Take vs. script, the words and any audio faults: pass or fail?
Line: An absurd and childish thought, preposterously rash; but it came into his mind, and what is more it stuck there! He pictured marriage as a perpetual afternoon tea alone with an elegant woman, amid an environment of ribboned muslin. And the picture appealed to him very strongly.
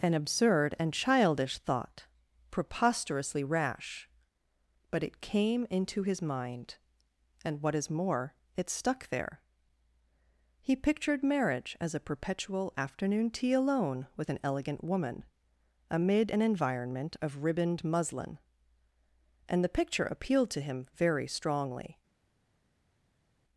pass